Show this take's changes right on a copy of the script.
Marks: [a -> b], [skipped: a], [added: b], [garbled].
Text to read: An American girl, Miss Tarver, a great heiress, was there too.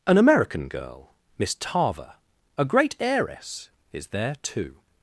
An American girl, Miss Tarver, a great heiress, [was -> is] there too.